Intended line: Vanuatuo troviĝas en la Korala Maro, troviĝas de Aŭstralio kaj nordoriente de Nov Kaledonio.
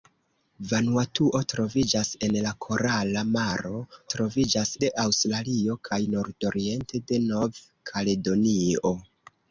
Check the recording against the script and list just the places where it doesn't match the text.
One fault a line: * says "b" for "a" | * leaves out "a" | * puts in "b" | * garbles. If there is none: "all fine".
all fine